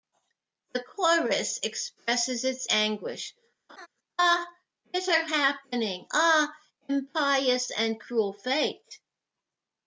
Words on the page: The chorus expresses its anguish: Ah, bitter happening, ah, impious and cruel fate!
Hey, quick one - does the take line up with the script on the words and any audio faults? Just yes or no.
no